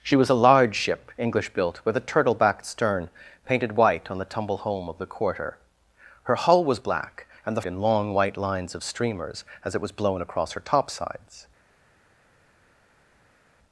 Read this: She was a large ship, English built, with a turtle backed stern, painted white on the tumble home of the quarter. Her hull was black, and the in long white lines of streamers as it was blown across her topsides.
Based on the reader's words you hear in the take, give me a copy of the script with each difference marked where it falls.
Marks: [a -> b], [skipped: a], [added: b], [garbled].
She was a large ship, English built, with a turtle backed stern, painted white on the tumble home of the quarter. Her hull was black, and the in long white lines of streamers as it was blown across her topsides.